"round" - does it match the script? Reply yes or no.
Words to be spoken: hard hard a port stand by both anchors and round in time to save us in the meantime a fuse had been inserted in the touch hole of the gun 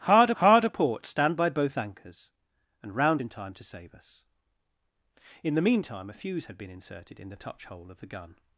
yes